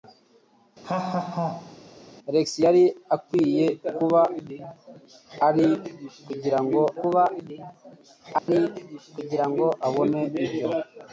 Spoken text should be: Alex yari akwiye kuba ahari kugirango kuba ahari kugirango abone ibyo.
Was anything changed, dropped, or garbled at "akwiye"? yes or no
no